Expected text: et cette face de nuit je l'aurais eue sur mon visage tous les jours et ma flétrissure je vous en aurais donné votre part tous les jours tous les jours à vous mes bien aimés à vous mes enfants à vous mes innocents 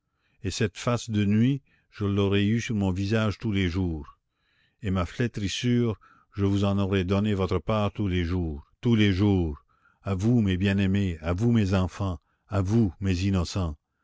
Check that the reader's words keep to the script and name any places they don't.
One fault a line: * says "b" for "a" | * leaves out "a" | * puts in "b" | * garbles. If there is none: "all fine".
all fine